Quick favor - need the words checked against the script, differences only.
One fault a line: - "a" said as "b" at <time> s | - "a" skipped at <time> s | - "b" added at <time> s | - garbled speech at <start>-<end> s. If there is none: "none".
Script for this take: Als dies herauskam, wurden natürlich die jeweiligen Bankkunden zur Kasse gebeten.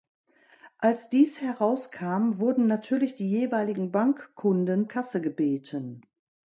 - "zur" skipped at 4.9 s